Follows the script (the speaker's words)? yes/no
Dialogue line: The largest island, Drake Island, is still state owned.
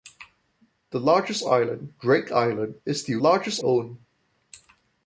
no